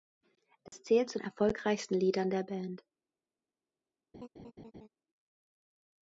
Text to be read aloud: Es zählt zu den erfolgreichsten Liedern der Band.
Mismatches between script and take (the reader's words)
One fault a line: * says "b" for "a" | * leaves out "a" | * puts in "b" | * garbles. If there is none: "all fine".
* leaves out "den"